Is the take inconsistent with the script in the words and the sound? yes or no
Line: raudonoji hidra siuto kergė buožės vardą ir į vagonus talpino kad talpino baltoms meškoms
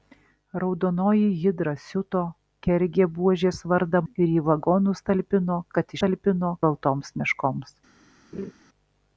yes